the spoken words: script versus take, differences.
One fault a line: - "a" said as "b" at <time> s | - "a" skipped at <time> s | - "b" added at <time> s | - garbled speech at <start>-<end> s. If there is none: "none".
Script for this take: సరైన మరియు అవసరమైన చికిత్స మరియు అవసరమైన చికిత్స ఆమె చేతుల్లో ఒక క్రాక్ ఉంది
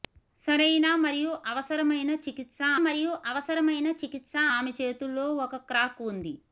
none